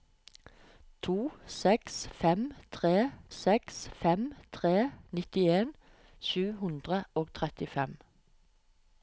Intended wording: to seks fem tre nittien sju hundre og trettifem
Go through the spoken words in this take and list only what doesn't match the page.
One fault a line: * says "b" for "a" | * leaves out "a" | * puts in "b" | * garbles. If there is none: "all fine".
* puts in "seks fem tre"